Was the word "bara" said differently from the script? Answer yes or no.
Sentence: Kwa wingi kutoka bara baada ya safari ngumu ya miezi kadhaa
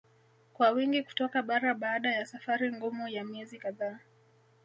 no